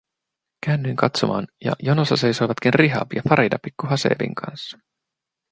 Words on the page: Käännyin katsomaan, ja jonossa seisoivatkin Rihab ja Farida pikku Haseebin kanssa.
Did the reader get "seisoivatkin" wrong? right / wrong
right